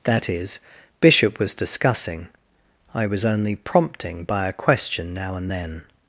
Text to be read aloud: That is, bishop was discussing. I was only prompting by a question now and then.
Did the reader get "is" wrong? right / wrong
right